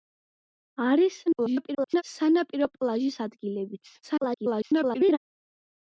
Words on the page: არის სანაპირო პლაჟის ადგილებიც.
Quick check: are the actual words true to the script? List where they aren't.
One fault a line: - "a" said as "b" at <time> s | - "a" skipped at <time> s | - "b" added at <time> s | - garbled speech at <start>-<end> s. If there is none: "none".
- garbled speech at 1.3-2.0 s
- garbled speech at 4.0-5.2 s